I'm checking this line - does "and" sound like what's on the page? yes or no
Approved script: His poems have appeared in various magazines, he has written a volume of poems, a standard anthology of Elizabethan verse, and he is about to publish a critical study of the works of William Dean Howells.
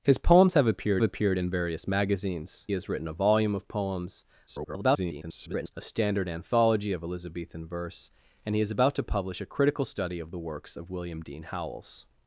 yes